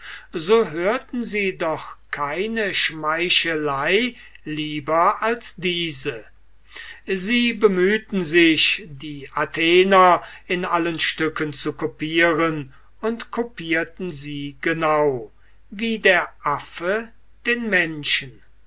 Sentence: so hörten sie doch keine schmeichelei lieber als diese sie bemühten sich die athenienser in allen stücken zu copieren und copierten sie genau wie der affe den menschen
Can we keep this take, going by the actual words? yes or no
yes